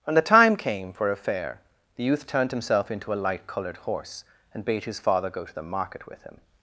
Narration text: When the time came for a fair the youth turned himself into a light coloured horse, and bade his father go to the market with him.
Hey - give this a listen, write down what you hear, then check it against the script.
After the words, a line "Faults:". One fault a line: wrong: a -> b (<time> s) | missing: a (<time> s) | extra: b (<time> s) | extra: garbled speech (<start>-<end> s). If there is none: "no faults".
When the time came for a fair the youth turned himself into a light coloured horse, and bade his father go to the market with him.
Faults:
no faults